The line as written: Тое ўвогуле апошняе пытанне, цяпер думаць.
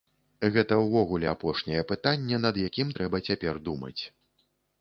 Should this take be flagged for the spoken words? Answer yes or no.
yes